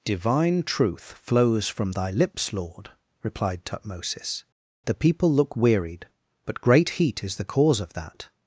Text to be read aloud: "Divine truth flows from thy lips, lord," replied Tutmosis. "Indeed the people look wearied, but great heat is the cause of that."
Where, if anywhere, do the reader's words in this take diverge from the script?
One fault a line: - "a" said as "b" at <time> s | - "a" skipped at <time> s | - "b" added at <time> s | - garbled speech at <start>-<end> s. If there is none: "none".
- "Indeed" skipped at 4.4 s